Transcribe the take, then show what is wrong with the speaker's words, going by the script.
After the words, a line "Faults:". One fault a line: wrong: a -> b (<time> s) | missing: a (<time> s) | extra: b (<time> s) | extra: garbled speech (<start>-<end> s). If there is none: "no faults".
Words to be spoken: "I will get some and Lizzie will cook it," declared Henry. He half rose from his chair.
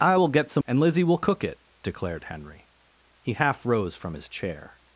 "I will get some and Lizzie will cook it," declared Henry. He half rose from his chair.
Faults:
no faults